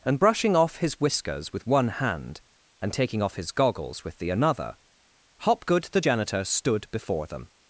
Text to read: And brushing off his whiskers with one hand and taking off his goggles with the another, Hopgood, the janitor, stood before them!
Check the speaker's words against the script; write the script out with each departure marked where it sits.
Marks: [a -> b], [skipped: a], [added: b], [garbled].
And brushing off his whiskers with one hand and taking off his goggles with the another, Hopgood, the janitor, stood before them!